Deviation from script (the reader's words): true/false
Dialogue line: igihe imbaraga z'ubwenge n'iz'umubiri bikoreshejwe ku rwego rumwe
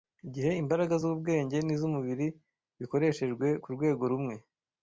false